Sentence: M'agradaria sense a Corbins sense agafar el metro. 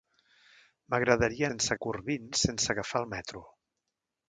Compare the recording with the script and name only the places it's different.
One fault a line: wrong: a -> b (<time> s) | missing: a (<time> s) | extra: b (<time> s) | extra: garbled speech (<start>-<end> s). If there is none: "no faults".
no faults